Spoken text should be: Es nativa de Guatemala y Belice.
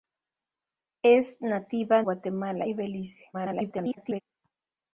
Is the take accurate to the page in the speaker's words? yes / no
no